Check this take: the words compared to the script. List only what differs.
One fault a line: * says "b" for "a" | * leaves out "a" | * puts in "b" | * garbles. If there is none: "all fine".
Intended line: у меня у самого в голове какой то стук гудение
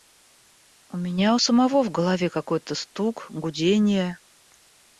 all fine